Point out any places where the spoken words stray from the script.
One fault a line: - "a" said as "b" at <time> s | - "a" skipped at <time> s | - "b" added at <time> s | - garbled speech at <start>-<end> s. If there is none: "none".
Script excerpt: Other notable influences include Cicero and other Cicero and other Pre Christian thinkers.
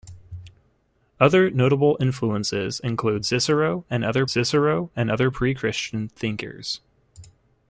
none